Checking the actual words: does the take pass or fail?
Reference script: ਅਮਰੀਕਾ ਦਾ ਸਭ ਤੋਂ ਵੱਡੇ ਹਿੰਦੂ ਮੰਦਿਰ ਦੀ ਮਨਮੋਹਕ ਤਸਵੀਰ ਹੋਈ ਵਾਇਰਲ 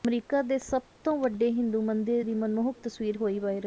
fail